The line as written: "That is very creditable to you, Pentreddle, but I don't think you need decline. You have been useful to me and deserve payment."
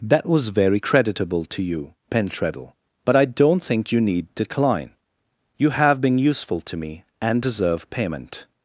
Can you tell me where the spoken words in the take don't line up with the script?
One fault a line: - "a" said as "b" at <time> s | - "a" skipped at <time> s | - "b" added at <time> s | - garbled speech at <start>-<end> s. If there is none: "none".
- "is" said as "was" at 0.2 s